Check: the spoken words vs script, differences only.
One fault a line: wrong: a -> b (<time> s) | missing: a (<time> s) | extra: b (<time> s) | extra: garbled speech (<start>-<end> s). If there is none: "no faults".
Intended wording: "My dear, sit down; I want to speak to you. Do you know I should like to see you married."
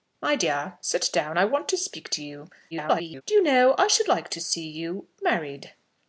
extra: garbled speech (2.7-3.2 s)